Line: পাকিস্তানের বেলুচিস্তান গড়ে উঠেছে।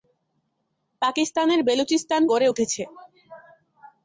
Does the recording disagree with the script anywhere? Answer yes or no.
no